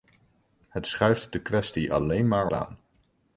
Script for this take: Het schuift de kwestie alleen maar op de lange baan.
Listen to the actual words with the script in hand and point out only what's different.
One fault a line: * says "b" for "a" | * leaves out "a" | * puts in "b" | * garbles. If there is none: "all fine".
* leaves out "op de lange"